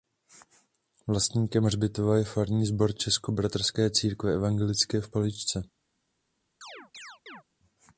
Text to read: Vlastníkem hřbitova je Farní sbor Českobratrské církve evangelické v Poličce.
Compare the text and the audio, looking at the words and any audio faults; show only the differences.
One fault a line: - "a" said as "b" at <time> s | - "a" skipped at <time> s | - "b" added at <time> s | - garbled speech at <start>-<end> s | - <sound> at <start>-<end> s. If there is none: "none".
- chirp at 6.6-7.4 s